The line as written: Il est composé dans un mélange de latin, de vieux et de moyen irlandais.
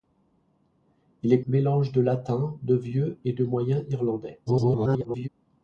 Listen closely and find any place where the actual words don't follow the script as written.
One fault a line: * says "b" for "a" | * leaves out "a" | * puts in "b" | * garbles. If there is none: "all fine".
* leaves out "composé dans un"
* garbles